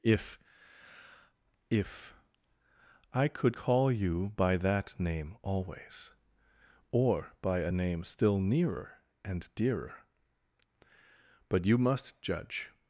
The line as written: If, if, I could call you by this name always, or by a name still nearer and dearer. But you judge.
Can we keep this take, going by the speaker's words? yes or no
no